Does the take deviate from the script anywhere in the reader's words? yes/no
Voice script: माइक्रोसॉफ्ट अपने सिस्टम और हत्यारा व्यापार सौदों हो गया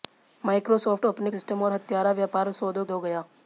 no